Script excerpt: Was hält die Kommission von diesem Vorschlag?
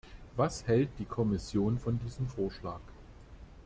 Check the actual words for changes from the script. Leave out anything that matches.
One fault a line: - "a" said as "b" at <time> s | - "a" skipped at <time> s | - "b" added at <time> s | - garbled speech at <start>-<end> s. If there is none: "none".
none